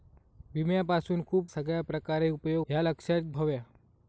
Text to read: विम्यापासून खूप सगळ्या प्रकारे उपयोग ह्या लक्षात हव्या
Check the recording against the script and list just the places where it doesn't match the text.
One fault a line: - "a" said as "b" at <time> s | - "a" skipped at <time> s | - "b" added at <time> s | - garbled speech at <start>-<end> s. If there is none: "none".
none